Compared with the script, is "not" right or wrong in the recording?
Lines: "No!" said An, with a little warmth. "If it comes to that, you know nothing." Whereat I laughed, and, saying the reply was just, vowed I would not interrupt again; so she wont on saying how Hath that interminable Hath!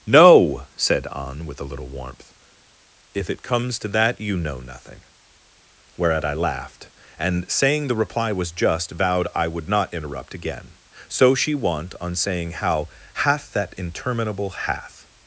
right